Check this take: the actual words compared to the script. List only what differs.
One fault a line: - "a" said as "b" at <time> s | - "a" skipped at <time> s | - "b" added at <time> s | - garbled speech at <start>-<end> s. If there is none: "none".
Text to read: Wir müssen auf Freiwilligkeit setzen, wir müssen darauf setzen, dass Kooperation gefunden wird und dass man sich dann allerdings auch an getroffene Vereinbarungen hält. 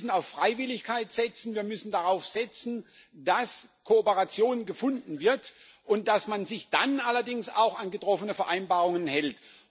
none